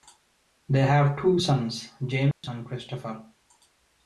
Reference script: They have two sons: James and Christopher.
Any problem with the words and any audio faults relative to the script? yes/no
yes